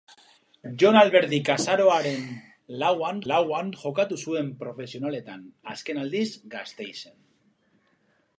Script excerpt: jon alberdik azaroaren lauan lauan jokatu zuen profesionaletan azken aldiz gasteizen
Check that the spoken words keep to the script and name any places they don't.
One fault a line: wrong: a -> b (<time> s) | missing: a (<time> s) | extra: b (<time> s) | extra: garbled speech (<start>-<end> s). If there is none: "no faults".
no faults